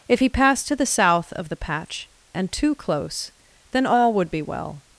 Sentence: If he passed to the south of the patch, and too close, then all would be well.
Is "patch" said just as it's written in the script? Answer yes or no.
yes